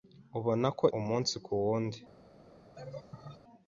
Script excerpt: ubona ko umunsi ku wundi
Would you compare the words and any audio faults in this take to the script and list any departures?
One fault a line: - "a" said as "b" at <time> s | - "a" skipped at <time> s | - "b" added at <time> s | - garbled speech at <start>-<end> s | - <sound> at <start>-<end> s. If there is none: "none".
- laugh at 2.7-3.4 s